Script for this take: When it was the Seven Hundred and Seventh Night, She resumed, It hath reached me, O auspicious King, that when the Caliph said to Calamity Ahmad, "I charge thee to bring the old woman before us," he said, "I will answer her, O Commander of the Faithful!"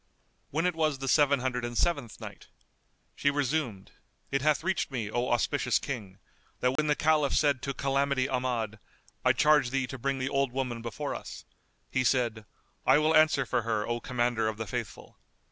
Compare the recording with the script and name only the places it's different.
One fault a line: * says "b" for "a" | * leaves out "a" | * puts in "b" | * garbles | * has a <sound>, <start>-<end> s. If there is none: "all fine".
* has a dropout, 6.8-6.8 s
* puts in "for"